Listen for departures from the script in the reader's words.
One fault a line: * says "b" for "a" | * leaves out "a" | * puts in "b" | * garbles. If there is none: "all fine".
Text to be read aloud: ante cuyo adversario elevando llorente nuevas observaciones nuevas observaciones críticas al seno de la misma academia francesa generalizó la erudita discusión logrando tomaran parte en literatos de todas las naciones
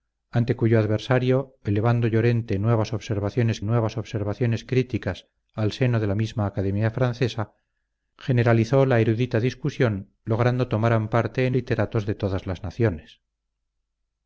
all fine